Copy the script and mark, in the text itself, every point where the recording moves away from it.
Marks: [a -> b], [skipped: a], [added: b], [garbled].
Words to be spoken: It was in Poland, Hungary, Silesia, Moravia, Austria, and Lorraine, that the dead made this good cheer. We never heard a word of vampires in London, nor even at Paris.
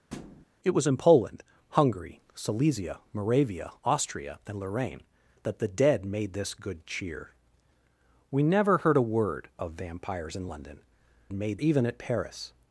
It was in Poland, Hungary, Silesia, Moravia, Austria, and Lorraine, that the dead made this good cheer. We never heard a word of vampires in London, [nor -> made] even at Paris.